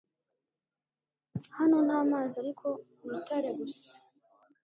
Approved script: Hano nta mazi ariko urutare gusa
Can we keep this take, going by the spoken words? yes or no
yes